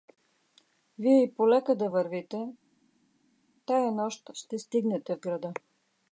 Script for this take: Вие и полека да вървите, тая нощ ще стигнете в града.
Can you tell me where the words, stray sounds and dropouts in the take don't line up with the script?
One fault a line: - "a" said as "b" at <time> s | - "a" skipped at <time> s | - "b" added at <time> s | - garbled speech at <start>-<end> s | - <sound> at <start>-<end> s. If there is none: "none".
none